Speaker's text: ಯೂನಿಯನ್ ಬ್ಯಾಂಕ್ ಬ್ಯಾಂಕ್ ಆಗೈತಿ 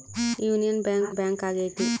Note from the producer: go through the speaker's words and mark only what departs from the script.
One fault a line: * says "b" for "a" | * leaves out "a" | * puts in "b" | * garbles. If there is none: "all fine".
all fine